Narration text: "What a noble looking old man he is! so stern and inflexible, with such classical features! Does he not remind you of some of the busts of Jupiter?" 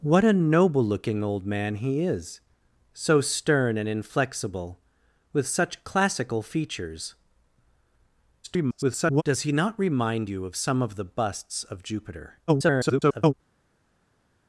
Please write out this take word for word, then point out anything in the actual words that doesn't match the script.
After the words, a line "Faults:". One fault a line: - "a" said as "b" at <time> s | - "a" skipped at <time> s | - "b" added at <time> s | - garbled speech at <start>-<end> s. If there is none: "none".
"What a noble looking old man he is! so stern and inflexible, with such classical features! [garbled] Does he not remind you of some of the busts of Jupiter?" [garbled]
Faults:
- garbled speech at 8.4-9.2 s
- garbled speech at 12.5-13.3 s